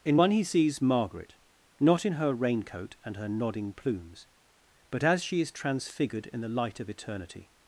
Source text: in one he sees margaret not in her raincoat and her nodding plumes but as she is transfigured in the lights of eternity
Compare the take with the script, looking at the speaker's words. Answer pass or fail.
fail